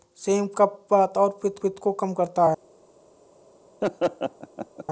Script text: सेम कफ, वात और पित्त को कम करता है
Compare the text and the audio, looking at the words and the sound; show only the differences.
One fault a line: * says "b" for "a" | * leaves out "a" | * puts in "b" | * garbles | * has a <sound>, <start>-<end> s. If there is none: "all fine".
* puts in "पित्त"
* has a laugh, 3.8-4.8 s